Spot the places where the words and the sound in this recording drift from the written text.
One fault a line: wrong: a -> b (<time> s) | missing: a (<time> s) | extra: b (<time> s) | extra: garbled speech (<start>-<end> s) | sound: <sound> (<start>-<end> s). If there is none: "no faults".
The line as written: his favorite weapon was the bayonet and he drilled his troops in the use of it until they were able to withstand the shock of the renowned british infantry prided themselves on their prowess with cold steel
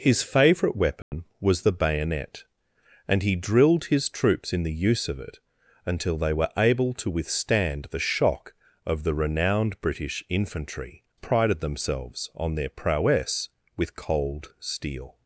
sound: dropout (1.0-1.1 s)